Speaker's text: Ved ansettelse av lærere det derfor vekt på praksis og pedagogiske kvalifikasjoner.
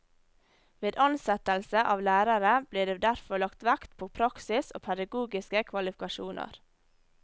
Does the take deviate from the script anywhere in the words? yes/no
yes